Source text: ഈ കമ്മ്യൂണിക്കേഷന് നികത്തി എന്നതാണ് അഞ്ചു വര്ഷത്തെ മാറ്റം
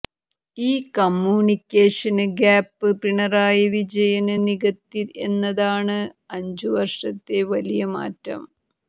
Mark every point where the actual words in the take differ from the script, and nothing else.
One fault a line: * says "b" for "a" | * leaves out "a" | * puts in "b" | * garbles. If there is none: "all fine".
* puts in "ഗ്യാപ്പ് പിണറായി വിജയന്"
* puts in "വലിയ"